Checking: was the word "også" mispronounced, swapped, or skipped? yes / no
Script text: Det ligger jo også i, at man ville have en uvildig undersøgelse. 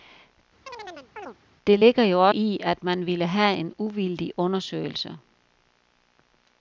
yes